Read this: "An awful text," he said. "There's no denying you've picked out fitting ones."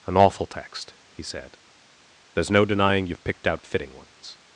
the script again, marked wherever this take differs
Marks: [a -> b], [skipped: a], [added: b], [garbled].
"An awful text," he said. "There's no denying you've picked out fitting ones."